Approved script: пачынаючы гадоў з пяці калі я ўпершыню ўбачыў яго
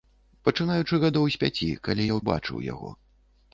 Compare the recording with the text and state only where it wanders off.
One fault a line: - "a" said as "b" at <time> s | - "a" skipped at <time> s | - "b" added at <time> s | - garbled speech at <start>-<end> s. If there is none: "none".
- "ўпершыню" skipped at 2.2 s